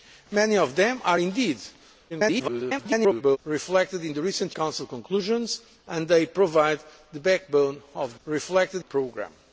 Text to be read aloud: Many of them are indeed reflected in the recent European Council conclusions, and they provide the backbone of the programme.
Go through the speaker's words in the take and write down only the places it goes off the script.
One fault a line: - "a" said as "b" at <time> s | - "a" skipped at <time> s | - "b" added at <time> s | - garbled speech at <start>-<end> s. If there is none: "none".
- garbled speech at 2.1-3.4 s
- "European" skipped at 4.5 s
- "the" said as "reflected" at 8.3 s